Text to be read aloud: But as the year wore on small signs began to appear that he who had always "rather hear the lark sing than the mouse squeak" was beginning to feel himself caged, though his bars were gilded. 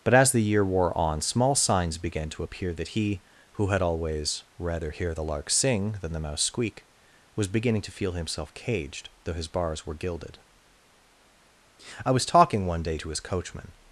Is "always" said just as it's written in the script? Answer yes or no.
yes